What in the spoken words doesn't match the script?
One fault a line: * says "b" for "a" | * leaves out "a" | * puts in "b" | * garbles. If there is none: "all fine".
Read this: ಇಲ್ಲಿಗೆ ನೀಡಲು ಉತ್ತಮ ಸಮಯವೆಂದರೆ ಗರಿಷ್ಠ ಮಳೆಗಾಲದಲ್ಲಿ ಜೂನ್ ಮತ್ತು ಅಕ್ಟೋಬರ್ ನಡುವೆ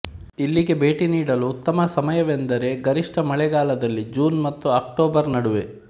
* puts in "ಭೇಟಿ"